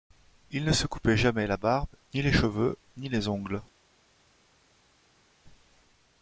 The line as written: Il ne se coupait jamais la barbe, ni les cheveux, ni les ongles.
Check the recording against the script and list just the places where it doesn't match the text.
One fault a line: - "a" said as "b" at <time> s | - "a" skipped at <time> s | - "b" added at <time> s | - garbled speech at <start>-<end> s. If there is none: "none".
none